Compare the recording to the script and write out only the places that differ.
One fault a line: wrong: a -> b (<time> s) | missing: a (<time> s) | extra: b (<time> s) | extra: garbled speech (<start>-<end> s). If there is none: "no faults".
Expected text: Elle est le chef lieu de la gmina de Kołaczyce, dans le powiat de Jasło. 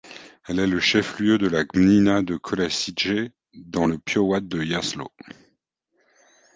no faults